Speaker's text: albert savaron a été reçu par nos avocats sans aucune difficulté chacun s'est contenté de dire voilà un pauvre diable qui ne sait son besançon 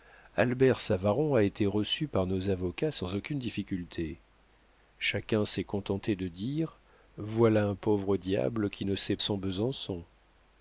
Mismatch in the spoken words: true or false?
false